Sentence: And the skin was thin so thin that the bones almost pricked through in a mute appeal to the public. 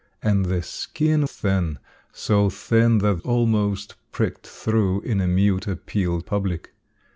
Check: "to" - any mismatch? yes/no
yes